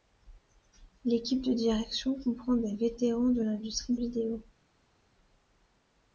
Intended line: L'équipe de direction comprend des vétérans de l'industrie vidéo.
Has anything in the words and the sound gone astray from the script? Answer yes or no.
no